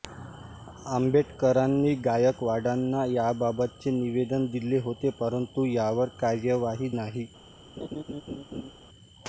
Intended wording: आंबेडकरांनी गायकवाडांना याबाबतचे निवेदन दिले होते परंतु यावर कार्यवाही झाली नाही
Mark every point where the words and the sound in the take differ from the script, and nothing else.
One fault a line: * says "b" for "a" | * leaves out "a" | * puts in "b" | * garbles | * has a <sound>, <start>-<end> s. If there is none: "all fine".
* leaves out "झाली"
* has a laugh, 7.8-8.7 s